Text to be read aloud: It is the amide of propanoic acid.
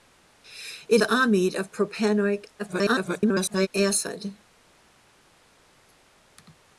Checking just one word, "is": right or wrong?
wrong